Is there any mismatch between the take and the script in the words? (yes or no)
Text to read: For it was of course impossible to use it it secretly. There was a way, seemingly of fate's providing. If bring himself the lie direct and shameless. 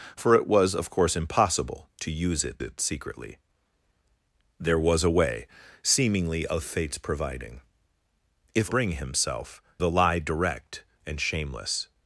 no